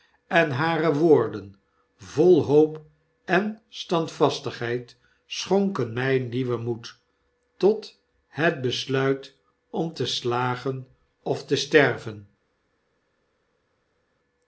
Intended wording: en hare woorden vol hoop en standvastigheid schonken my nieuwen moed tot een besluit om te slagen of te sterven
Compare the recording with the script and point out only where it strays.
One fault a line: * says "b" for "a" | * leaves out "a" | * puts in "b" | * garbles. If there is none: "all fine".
* says "het" for "een"